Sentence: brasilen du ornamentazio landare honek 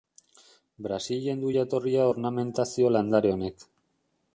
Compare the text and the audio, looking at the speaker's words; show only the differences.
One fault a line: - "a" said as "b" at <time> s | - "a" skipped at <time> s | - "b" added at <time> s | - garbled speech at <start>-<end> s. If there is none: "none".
- "jatorria" added at 1.6 s